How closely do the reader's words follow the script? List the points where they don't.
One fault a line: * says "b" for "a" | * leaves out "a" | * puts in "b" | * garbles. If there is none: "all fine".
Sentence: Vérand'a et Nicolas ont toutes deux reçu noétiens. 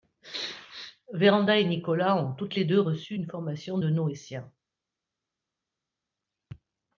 * puts in "les"
* puts in "une formation de"